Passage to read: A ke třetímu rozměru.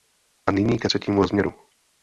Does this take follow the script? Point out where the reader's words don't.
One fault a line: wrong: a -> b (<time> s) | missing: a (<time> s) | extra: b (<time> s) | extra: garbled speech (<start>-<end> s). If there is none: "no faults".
extra: nyní (0.5 s)